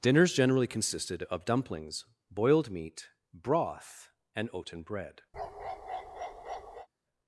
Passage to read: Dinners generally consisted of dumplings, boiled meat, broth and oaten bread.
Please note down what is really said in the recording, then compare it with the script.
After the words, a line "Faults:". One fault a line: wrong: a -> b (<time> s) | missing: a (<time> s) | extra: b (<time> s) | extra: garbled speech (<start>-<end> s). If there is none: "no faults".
Dinners generally consisted of dumplings, boiled meat, broth and oaten bread.
Faults:
no faults